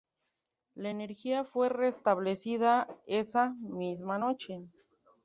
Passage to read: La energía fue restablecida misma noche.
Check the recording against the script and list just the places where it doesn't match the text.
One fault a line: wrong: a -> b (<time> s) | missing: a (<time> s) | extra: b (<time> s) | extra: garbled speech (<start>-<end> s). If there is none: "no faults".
extra: esa (3.1 s)